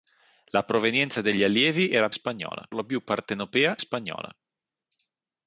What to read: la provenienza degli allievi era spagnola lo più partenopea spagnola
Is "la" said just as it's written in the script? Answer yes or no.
yes